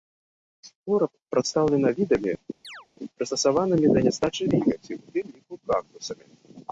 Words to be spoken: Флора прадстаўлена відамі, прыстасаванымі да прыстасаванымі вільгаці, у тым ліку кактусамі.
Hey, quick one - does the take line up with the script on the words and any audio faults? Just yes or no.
no